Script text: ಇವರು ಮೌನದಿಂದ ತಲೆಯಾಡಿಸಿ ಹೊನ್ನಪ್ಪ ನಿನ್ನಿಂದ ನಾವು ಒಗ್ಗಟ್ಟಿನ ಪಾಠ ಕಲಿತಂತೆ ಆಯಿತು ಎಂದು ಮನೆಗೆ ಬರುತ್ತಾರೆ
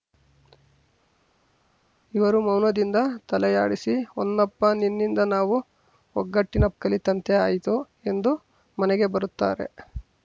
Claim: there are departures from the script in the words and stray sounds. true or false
true